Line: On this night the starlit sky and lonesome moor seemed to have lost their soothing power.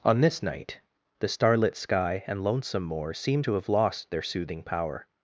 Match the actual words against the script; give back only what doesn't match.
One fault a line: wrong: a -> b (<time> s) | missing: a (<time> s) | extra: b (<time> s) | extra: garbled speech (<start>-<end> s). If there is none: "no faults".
no faults